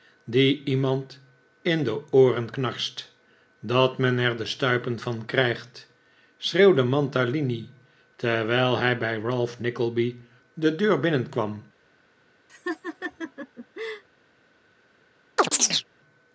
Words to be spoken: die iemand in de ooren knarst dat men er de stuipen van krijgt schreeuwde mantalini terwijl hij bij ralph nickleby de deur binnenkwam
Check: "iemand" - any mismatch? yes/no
no